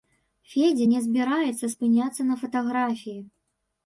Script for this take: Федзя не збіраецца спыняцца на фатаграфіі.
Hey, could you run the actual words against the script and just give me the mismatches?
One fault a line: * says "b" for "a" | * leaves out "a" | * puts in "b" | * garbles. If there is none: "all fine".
all fine